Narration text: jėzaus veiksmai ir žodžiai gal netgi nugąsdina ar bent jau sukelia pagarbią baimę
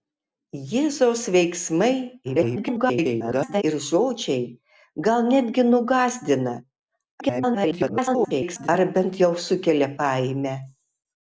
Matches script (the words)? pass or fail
fail